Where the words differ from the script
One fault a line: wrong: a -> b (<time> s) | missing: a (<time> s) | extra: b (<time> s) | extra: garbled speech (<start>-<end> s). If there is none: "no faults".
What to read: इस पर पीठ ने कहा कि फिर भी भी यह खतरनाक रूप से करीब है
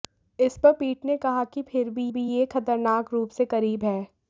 no faults